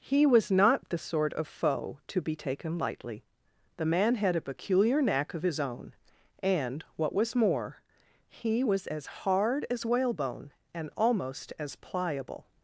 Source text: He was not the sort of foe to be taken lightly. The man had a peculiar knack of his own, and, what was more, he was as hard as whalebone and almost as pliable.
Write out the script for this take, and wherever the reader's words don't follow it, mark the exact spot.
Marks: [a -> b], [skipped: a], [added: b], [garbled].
He was not the sort of foe to be taken lightly. The man had a peculiar knack of his own, and, what was more, he was as hard as whalebone and almost as pliable.